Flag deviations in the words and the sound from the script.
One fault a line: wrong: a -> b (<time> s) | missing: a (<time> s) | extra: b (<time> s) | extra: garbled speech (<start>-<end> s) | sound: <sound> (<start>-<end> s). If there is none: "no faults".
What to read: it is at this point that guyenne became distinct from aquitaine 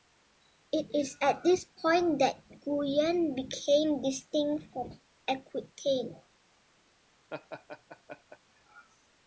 sound: laugh (7.3-8.4 s)